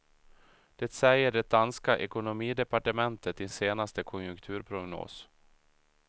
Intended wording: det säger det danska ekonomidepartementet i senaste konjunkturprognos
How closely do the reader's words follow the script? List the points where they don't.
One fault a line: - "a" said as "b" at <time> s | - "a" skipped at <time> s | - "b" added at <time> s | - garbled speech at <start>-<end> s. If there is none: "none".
none